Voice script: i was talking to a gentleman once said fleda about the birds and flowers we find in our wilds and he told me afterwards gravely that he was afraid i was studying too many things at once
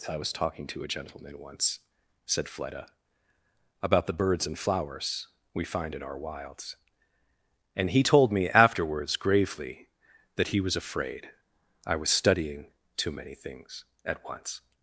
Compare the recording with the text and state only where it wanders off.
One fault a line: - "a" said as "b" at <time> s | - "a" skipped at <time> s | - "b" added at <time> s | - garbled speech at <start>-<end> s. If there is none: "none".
none